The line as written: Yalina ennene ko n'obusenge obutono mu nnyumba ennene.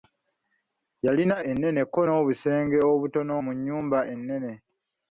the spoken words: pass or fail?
pass